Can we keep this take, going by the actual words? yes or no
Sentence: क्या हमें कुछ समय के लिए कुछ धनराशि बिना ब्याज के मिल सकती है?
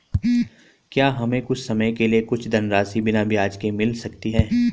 yes